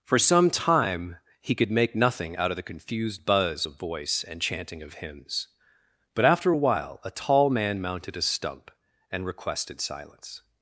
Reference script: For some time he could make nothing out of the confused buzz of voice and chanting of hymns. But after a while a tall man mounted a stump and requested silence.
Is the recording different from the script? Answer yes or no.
no